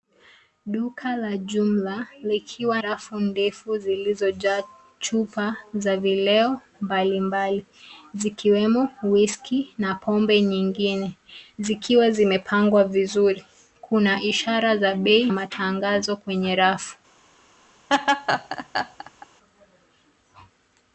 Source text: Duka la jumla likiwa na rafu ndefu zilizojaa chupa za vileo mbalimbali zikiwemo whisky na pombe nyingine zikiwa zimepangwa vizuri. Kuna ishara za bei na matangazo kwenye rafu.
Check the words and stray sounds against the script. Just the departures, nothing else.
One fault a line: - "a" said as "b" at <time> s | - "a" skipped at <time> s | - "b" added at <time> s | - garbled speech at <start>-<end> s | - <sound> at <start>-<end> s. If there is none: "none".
- "na" skipped at 2.8 s
- "na" skipped at 15.3 s
- laugh at 17.9-19.3 s